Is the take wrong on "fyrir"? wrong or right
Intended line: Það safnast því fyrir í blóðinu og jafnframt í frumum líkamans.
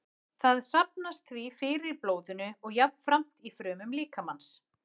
right